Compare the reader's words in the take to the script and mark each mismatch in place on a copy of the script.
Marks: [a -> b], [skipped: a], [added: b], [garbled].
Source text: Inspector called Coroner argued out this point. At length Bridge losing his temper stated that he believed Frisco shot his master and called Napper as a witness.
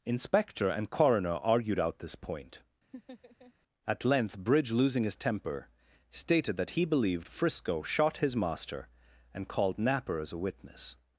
Inspector [called -> and] Coroner argued out this point. At length Bridge losing his temper stated that he believed Frisco shot his master and called Napper as a witness.